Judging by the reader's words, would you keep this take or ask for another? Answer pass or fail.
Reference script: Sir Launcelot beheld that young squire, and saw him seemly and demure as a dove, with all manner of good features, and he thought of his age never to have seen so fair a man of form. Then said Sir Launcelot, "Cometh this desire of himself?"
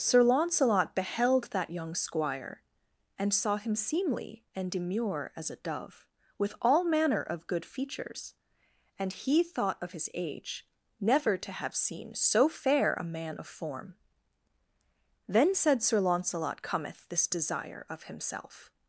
pass